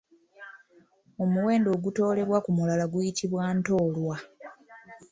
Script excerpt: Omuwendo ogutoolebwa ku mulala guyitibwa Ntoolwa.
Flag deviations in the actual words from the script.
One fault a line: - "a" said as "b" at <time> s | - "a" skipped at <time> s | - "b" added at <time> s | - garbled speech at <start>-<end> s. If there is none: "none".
none